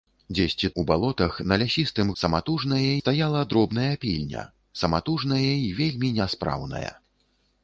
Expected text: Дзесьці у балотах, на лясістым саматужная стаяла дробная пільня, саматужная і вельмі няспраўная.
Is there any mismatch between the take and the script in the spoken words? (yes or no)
no